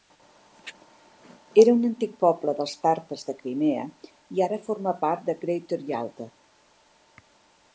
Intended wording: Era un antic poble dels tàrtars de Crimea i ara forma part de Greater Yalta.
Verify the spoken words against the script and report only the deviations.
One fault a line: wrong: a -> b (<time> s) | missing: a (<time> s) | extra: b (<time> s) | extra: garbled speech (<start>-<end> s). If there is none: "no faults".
no faults